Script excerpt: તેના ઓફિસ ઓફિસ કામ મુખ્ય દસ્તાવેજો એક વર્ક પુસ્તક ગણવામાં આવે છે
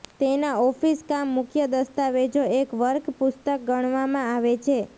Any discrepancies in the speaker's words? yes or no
yes